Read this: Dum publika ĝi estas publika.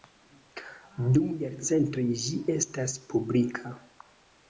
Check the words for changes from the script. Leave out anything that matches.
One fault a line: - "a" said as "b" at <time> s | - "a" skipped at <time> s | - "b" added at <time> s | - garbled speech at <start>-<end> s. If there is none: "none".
- "publika" said as "jarcentoj" at 1.4 s